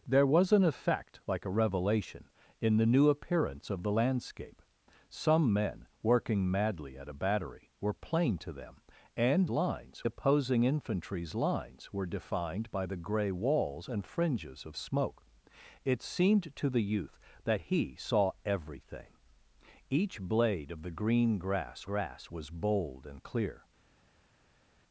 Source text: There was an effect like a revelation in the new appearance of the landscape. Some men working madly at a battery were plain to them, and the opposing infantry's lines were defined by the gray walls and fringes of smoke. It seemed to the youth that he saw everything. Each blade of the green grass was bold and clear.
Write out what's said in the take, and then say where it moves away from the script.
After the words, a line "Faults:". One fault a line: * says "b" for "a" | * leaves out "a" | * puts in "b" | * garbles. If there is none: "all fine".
There was an effect like a revelation in the new appearance of the landscape. Some men working madly at a battery were plain to them, and lines opposing infantry's lines were defined by the gray walls and fringes of smoke. It seemed to the youth that he saw everything. Each blade of the green grass grass was bold and clear.
Faults:
* says "lines" for "the"
* puts in "grass"